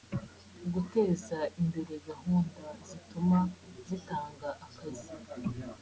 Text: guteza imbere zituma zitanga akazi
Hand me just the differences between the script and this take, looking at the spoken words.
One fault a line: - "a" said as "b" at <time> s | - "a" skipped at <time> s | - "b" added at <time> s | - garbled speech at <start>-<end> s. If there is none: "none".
- "gahunda" added at 2.1 s